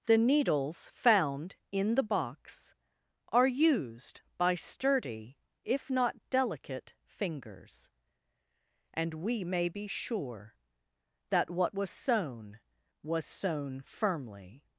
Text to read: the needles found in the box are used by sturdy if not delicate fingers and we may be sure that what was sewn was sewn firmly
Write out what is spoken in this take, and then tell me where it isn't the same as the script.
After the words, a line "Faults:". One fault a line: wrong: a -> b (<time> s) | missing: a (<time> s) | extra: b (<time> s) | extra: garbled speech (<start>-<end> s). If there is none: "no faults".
the needles found in the box are used by sturdy if not delicate fingers and we may be sure that what was sewn was sewn firmly
Faults:
no faults